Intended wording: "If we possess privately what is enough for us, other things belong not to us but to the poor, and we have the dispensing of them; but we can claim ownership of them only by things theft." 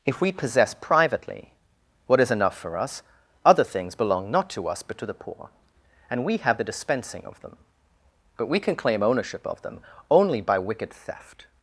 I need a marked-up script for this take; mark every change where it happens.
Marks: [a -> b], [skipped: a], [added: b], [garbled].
"If we possess privately what is enough for us, other things belong not to us but to the poor, and we have the dispensing of them; but we can claim ownership of them only by [things -> wicked] theft."